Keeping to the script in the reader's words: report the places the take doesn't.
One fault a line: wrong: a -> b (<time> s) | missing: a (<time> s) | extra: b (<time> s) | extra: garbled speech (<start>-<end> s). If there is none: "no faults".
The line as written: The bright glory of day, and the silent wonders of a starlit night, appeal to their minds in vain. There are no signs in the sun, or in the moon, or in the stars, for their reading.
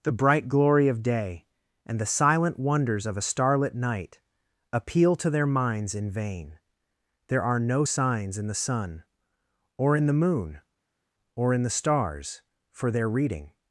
no faults